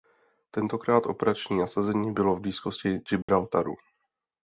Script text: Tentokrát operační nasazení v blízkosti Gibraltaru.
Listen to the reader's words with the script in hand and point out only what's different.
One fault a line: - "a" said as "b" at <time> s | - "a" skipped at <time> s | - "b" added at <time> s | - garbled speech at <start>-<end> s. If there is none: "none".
- "bylo" added at 2.1 s